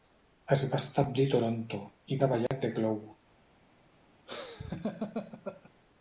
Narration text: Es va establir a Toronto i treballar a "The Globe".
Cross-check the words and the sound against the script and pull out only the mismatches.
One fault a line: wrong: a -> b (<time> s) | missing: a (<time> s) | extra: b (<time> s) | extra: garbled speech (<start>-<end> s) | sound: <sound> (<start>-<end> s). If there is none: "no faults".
sound: dropout (2.5-2.5 s)
sound: laugh (4.3-5.7 s)